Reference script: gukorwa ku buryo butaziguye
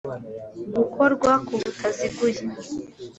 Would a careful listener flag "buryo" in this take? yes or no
yes